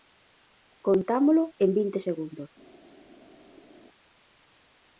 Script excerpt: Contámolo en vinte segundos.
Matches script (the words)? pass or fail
pass